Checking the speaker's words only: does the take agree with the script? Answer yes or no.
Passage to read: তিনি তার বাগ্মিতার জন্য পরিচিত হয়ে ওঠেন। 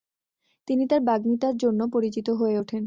yes